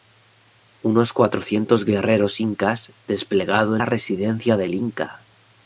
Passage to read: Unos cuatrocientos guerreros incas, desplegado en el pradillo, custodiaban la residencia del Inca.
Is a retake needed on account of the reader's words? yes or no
yes